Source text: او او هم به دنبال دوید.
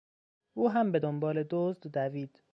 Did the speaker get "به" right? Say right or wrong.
right